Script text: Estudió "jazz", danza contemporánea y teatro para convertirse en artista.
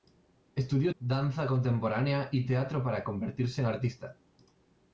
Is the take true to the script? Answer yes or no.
no